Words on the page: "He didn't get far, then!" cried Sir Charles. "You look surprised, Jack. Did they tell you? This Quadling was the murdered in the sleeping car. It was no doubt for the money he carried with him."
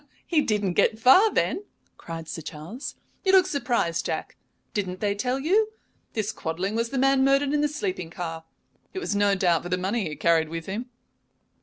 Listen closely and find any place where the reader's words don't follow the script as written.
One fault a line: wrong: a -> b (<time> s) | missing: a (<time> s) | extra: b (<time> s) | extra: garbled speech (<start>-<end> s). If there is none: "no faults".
wrong: Did -> Didn't (4.7 s)
extra: man (7.0 s)